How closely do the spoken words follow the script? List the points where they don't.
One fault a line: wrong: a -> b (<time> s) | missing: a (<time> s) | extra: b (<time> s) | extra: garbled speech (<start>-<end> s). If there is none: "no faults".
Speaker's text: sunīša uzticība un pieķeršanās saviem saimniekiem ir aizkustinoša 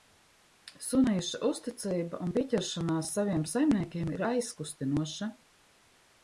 no faults